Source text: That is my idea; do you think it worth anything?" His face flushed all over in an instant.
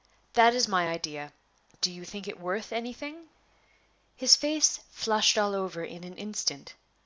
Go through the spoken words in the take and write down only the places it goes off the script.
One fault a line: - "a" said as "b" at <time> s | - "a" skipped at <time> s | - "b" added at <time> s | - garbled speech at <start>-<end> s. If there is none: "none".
none